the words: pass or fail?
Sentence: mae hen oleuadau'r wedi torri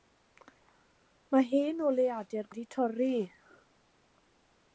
pass